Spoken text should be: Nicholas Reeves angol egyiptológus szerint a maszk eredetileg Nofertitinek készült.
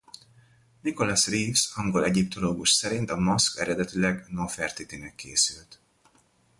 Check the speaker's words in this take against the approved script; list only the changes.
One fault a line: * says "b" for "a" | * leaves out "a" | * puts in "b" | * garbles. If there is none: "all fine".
all fine